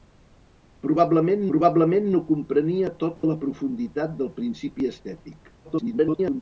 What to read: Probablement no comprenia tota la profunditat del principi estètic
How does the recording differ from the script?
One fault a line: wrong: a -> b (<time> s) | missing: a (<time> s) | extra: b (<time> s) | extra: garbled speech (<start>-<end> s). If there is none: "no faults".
extra: probablement (1.5 s)
extra: garbled speech (5.6-6.4 s)